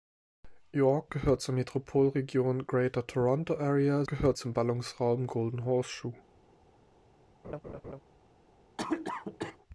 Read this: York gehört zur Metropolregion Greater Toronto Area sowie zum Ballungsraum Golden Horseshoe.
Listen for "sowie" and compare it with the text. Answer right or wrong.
wrong